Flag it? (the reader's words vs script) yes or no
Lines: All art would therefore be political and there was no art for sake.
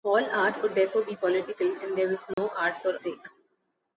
no